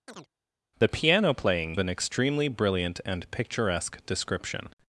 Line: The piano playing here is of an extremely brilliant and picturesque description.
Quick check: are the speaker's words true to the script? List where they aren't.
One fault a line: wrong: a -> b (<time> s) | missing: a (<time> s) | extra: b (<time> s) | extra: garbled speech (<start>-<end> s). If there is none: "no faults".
missing: here is of (1.7 s)